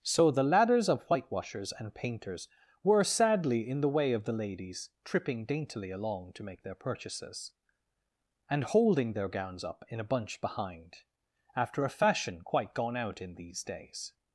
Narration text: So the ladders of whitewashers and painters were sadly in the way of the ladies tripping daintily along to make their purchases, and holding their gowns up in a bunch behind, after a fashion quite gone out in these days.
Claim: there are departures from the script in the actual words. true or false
false